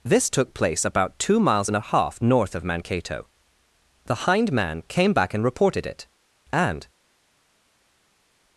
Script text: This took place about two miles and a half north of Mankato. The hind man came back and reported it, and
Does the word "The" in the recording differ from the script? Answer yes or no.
no